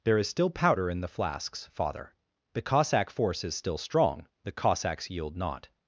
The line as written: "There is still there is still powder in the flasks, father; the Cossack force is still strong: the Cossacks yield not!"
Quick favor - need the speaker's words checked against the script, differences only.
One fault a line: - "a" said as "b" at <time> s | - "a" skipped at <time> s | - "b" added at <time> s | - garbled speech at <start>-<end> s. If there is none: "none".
- "there is still" skipped at 0.5 s